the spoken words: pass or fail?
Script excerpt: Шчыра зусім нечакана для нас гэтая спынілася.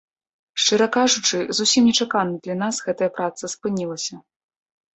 fail